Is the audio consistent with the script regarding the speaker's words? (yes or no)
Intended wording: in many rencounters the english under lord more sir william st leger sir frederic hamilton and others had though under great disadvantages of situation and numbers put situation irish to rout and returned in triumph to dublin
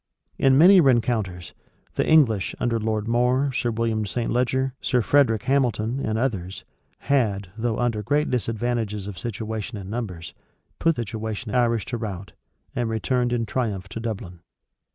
yes